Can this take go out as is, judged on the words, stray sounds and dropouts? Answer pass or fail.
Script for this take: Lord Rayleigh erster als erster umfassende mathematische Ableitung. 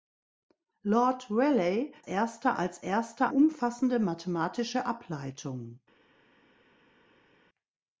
pass